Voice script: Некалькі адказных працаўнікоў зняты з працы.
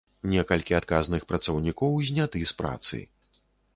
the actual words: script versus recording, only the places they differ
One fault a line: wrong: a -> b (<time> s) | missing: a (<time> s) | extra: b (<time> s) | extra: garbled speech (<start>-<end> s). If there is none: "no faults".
no faults